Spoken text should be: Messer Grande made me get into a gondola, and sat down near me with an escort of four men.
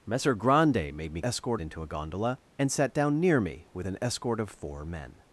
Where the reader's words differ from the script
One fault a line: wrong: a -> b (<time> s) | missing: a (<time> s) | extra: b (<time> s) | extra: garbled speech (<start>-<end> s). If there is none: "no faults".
wrong: get -> escort (1.2 s)